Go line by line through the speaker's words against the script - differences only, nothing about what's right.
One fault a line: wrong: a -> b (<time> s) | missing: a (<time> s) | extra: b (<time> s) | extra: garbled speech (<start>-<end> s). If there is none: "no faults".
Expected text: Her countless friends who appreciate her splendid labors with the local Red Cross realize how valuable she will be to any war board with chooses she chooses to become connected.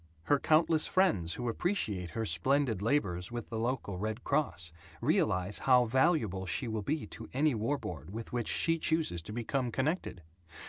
wrong: chooses -> which (8.3 s)